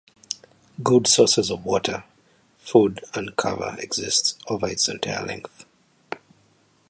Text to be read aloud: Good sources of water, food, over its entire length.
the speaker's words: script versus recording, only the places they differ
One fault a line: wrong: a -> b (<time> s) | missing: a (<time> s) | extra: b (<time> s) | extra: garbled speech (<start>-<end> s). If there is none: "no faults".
extra: and cover exist (3.1 s)